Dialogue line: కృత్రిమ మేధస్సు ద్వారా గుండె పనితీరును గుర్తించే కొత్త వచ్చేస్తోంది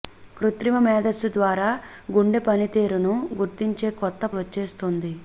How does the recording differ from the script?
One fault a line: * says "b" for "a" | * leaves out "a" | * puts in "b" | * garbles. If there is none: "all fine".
all fine